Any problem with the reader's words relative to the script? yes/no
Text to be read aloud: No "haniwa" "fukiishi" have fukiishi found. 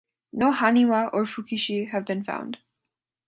yes